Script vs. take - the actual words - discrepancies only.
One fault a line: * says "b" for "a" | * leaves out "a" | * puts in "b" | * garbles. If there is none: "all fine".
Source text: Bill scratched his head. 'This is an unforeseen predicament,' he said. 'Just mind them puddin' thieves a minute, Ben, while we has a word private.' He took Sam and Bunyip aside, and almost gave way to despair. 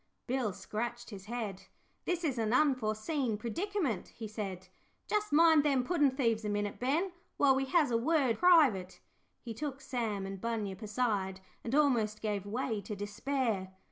all fine